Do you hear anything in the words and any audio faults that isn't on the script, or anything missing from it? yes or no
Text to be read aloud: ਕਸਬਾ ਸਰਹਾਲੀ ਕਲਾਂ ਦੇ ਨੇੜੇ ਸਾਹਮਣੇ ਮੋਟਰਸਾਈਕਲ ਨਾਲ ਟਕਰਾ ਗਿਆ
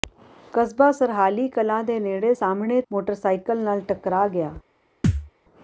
yes